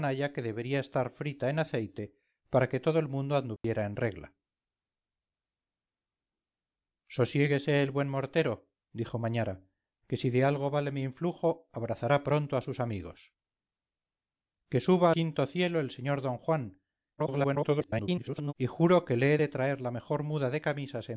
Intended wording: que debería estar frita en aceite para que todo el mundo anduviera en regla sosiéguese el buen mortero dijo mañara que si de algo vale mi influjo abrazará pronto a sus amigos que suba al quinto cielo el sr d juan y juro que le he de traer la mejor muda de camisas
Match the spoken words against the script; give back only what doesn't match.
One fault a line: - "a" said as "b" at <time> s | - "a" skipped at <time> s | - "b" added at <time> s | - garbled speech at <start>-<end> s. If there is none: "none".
- "al" skipped at 15.1 s
- garbled speech at 17.2-18.5 s